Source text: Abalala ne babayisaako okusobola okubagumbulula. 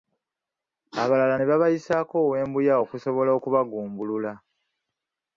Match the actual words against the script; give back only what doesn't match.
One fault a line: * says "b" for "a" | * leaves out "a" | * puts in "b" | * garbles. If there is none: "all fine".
* puts in "ow'embuya"